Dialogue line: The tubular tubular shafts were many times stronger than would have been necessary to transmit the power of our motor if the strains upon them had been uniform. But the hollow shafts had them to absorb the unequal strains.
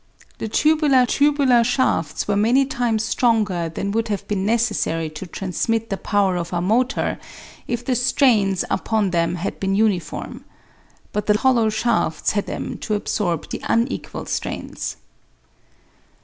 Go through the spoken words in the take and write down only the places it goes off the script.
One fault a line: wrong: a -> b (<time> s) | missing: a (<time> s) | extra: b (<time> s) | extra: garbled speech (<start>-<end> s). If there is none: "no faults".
no faults